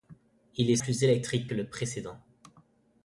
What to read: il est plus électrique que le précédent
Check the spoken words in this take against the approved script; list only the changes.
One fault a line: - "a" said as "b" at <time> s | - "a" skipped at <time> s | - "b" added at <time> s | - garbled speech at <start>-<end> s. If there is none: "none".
none